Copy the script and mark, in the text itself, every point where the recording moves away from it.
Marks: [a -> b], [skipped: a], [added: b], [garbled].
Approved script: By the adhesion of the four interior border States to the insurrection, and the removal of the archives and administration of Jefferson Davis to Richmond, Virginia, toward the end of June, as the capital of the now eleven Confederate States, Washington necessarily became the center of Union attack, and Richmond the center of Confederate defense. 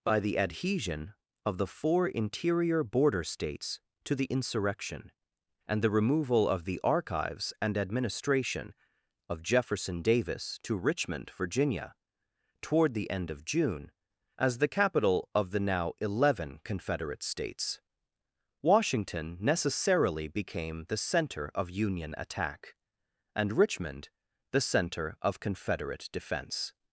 By the adhesion of the four interior border States to the insurrection, and the removal of the archives and administration of Jefferson Davis to Richmond, Virginia, toward the end of June, as the capital of the now eleven Confederate States, Washington necessarily became the center of Union attack, and Richmond the center of Confederate defense.